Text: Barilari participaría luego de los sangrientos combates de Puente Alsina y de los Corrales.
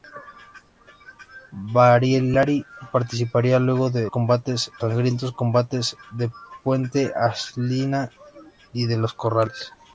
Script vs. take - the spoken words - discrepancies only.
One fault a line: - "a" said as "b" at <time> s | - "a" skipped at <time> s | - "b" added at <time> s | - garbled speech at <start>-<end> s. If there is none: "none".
- "los" said as "combates" at 4.1 s